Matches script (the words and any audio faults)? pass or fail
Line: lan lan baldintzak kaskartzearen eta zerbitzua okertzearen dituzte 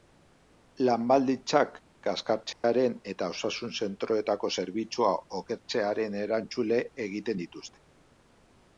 fail